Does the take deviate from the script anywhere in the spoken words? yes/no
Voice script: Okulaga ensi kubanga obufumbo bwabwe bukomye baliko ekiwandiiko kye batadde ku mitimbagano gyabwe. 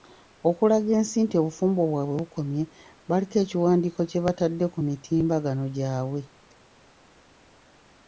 yes